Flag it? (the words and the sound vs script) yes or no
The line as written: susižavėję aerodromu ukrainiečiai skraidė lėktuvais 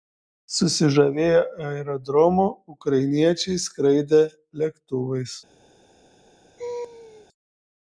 yes